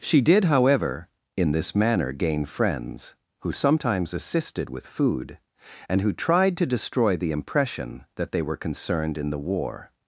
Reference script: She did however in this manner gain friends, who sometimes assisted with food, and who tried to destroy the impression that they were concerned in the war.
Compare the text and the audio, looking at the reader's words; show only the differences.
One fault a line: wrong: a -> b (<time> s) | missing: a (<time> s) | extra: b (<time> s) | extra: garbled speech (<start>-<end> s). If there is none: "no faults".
no faults